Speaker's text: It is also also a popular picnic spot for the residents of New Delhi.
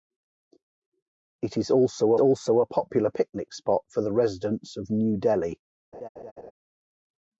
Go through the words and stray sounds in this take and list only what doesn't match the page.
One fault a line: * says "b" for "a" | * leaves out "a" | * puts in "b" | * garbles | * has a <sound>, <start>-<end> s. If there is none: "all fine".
* has a laugh, 5.9-6.5 s